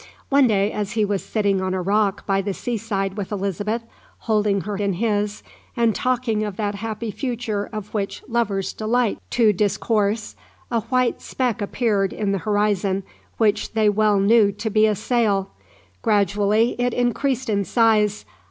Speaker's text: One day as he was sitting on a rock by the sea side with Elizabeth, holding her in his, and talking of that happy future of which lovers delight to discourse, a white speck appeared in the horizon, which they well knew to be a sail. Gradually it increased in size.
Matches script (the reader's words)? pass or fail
pass